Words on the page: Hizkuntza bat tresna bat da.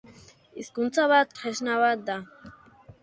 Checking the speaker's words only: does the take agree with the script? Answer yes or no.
yes